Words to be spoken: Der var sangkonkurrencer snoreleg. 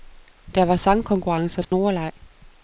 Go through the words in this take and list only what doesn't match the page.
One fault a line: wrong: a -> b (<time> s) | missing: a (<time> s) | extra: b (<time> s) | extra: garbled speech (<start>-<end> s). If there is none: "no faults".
no faults